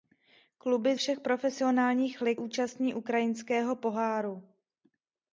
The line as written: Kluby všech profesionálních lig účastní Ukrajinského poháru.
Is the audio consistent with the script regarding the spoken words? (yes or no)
yes